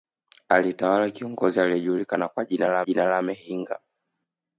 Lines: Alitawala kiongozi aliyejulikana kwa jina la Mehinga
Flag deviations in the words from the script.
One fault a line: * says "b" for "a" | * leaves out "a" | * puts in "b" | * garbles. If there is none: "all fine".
* puts in "jina la"